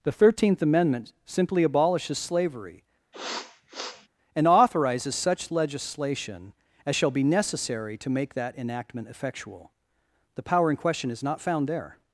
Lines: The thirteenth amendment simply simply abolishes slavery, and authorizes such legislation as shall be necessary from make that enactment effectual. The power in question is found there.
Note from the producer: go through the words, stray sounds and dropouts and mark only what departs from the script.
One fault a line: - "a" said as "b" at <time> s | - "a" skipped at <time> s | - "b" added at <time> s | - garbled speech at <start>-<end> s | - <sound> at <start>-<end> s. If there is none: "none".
- "simply" skipped at 1.6 s
- sniff at 3.1-4.1 s
- "from" said as "to" at 8.0 s
- "not" added at 11.2 s